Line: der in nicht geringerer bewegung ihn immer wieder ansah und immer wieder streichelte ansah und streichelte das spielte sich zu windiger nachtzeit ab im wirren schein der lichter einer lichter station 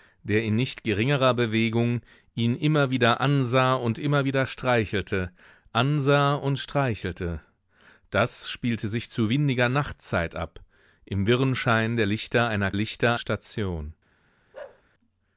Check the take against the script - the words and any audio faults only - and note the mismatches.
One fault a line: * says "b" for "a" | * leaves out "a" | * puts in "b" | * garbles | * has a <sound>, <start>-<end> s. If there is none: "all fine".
* has a bark, 14.5-14.8 s